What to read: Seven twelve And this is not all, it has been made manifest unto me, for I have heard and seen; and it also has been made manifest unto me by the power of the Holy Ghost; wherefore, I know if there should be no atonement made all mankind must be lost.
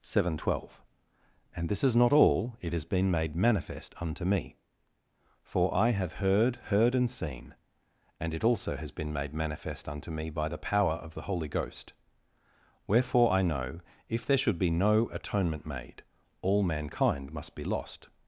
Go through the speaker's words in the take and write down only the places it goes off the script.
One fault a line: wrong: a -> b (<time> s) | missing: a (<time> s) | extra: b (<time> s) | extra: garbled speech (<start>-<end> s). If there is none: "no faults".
extra: heard (6.5 s)